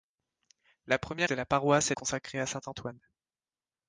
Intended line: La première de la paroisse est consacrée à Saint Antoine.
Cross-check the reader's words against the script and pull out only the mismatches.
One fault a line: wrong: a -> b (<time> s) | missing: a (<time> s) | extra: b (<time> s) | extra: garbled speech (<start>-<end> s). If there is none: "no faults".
no faults